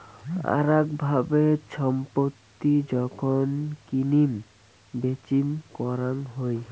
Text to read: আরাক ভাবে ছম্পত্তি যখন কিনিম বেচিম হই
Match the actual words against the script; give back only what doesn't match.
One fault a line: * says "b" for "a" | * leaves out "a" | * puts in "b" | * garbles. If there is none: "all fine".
* puts in "করাং"